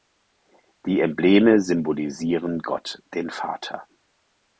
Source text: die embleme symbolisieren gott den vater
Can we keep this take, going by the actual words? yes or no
yes